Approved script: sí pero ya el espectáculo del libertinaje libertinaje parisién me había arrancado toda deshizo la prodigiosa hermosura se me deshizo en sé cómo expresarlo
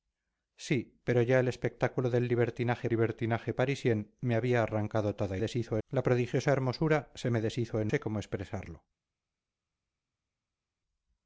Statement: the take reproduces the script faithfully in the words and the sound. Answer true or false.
true